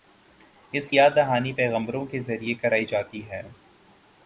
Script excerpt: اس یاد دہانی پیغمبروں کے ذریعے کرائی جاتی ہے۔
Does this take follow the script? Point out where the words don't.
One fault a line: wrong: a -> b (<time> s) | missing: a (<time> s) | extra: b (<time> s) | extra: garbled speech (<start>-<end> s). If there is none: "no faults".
no faults